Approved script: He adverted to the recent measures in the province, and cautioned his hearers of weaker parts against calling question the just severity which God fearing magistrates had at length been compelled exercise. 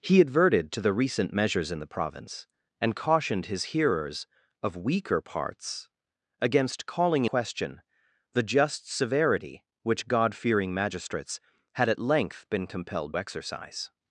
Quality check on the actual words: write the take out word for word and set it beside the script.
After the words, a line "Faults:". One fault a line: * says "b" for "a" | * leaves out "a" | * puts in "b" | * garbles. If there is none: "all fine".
He adverted to the recent measures in the province, and cautioned his hearers of weaker parts against calling question the just severity which God fearing magistrates had at length been compelled exercise.
Faults:
all fine